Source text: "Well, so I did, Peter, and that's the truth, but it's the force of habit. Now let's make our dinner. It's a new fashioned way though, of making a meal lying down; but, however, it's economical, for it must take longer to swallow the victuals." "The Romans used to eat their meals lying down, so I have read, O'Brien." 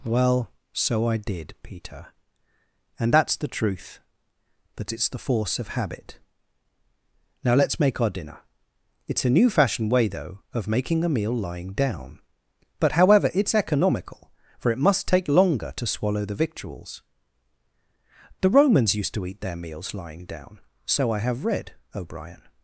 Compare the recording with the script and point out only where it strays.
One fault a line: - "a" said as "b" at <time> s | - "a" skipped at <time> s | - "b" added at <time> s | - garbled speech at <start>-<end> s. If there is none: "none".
- "but" said as "that" at 4.8 s